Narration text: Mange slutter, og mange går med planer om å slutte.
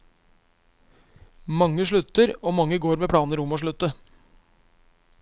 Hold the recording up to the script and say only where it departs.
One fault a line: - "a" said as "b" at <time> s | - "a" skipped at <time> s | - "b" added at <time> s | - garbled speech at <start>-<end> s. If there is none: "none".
none